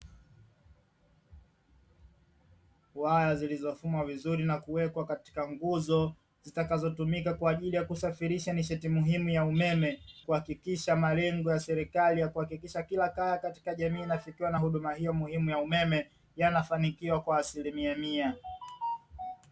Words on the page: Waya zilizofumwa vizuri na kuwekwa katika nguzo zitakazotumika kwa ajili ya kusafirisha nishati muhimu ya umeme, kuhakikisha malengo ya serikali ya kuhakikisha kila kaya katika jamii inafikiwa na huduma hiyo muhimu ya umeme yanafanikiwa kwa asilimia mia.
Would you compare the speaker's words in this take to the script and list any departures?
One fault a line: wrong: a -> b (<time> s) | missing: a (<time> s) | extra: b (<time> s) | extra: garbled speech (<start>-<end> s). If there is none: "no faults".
no faults